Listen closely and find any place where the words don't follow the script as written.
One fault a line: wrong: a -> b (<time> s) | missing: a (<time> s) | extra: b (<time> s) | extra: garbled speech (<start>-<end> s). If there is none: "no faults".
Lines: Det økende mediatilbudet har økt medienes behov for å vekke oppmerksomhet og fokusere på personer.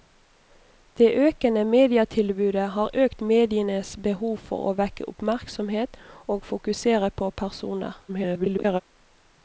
extra: garbled speech (8.1-8.8 s)